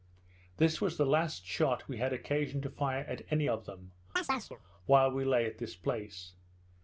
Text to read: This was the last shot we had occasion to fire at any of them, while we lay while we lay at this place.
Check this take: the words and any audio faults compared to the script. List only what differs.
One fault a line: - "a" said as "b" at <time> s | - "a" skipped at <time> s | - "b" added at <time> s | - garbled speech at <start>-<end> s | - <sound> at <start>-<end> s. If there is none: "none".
- chirp at 4.2-4.6 s
- "while we lay" skipped at 5.5 s